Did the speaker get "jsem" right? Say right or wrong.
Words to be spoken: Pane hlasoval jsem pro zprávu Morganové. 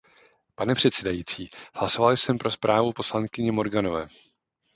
right